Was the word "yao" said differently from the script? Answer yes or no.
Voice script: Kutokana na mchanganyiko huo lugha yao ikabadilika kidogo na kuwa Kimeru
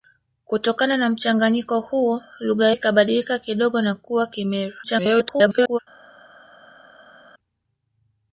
yes